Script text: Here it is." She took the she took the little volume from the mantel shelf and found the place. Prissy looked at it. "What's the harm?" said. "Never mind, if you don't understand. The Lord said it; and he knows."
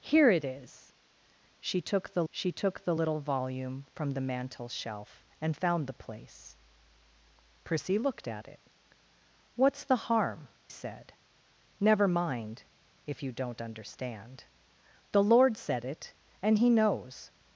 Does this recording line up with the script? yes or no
yes